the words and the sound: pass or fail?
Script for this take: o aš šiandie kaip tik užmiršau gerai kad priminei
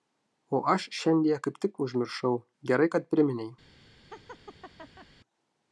fail